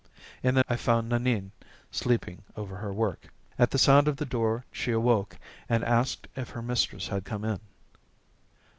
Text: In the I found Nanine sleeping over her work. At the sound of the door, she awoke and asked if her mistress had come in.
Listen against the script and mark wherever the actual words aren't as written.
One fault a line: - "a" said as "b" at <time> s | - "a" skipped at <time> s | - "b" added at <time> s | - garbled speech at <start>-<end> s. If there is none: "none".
none